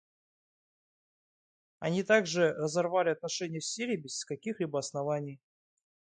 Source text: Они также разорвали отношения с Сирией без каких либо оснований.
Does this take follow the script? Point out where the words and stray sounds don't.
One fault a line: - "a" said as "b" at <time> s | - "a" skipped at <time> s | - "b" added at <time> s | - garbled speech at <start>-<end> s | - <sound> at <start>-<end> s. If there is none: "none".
none